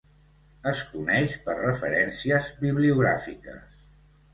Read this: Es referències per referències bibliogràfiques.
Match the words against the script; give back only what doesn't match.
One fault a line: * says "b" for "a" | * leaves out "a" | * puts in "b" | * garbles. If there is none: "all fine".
* says "coneix" for "referències"